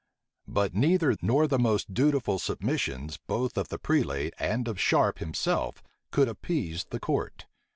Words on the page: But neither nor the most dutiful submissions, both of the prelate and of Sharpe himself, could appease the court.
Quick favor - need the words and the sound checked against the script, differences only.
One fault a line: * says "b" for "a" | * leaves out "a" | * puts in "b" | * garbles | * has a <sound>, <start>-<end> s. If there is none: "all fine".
all fine